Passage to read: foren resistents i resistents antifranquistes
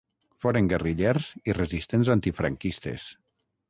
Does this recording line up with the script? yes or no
no